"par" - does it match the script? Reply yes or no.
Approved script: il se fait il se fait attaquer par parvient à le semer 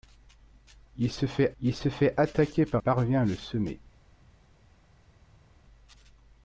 yes